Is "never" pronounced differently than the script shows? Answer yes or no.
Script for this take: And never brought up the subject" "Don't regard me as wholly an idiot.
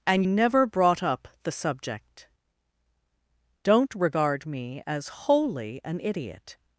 no